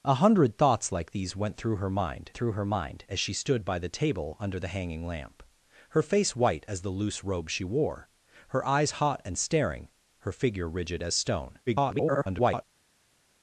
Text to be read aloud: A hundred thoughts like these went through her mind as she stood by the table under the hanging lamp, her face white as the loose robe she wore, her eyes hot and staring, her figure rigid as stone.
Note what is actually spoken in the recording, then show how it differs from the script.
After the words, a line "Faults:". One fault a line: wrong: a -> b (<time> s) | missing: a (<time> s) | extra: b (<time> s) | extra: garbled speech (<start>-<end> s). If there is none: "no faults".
A hundred thoughts like these went through her mind through her mind as she stood by the table under the hanging lamp, her face white as the loose robe she wore, her eyes hot and staring, her figure rigid as stone. [garbled]
Faults:
extra: through her mind (2.3 s)
extra: garbled speech (11.7-12.6 s)